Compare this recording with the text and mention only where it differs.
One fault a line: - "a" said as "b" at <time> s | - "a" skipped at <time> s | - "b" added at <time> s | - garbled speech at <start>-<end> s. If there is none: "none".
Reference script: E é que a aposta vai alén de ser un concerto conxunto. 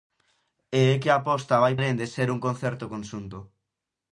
none